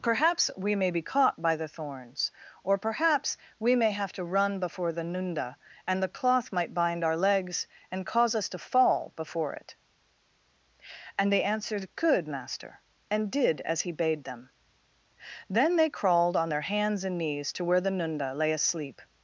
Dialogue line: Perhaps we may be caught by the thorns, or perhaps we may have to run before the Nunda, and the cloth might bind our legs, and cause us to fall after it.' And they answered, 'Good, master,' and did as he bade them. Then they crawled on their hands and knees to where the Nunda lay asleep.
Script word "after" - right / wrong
wrong